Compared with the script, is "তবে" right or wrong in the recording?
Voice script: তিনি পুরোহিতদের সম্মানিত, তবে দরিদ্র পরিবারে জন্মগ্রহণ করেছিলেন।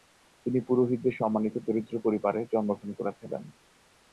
wrong